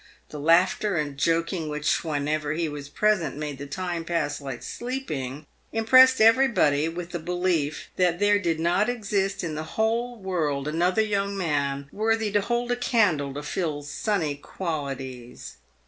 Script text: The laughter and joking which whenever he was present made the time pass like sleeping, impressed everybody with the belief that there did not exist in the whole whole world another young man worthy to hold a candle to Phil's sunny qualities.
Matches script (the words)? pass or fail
fail